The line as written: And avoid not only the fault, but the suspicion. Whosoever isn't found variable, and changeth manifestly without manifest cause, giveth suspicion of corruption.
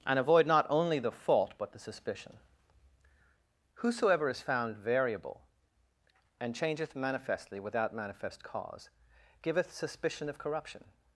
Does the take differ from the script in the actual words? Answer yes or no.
yes